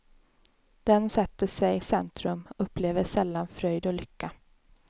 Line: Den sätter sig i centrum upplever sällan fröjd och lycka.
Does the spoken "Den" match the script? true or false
true